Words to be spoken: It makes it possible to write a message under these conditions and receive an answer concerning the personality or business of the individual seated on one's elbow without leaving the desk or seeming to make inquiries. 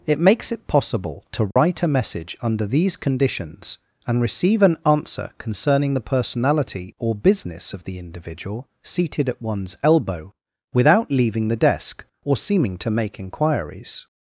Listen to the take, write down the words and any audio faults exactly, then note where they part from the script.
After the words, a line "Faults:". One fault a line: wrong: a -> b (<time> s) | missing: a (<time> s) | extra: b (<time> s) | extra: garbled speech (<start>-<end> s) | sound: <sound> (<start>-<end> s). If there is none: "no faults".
It makes it possible to write a message under these conditions and receive an answer concerning the personality or business of the individual seated at one's elbow without leaving the desk or seeming to make inquiries.
Faults:
sound: dropout (1.5-1.6 s)
wrong: on -> at (9.3 s)